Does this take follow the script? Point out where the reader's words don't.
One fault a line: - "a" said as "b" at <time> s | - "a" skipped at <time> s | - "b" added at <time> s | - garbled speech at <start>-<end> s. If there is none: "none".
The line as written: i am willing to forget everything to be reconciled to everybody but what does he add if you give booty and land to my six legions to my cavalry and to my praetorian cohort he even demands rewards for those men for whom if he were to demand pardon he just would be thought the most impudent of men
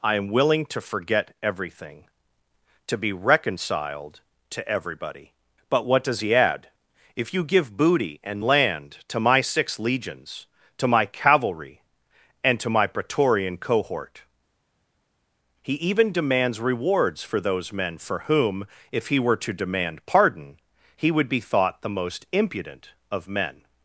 - "just" skipped at 21.1 s